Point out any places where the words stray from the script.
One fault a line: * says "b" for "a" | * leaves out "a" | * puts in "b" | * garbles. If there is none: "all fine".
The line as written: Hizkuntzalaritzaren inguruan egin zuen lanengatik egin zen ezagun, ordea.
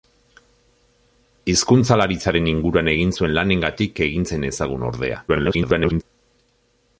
* garbles